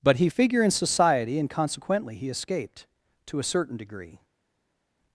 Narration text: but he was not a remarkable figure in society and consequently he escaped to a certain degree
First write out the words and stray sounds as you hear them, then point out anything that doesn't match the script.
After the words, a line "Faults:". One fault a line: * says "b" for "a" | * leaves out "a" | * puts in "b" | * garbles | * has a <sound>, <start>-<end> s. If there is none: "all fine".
but he figure in society and consequently he escaped to a certain degree
Faults:
* leaves out "was not a remarkable"